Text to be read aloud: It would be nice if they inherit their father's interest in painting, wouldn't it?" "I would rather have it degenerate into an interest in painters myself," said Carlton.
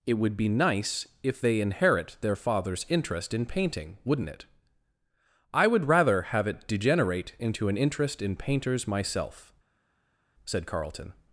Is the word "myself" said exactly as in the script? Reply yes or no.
yes